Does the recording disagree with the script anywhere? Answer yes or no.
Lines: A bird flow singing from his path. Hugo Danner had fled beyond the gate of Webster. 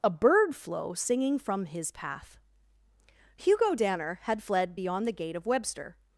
no